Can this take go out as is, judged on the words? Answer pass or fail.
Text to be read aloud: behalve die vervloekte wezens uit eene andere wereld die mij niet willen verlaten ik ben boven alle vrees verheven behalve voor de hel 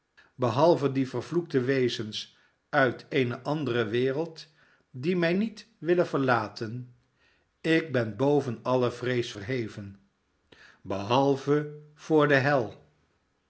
pass